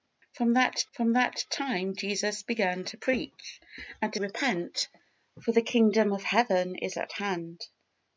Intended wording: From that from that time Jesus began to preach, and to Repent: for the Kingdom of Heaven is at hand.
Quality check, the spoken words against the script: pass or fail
pass